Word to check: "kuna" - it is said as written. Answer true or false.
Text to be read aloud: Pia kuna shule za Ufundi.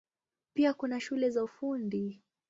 true